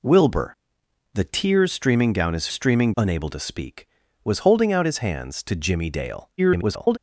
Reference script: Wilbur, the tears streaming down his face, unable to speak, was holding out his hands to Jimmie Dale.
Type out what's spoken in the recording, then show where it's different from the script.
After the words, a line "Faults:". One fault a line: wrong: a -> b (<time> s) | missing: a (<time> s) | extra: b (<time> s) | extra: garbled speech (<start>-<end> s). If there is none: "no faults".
Wilbur, the tears streaming down his streaming, unable to speak, was holding out his hands to Jimmie Dale. [garbled]
Faults:
wrong: face -> streaming (2.5 s)
extra: garbled speech (6.4-7.0 s)